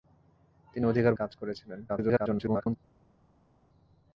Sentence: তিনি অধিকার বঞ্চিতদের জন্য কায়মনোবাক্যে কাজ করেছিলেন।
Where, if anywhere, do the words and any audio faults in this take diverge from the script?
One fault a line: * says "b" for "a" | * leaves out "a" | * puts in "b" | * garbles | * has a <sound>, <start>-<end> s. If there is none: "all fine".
* leaves out "বঞ্চিতদের জন্য কায়মনোবাক্যে"
* garbles